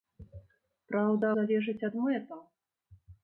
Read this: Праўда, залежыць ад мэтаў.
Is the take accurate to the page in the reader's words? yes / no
yes